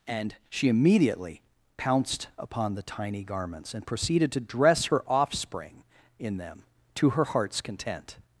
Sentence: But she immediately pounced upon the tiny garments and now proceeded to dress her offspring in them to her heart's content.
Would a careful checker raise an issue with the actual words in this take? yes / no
yes